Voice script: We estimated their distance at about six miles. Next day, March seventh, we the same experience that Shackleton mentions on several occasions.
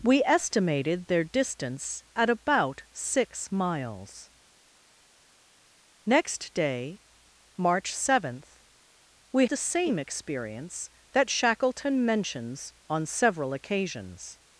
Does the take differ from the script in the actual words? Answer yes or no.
no